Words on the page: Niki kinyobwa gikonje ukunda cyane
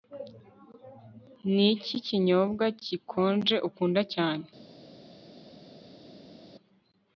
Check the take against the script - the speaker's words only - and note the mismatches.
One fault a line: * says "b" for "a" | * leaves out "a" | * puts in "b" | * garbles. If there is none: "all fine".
all fine